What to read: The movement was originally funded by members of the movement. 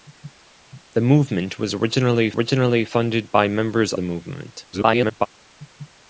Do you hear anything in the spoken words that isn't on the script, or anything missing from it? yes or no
yes